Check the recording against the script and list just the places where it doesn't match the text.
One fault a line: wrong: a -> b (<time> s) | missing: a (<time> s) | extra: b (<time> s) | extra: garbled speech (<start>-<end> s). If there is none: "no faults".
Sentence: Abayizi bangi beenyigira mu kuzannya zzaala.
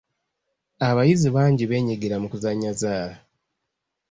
no faults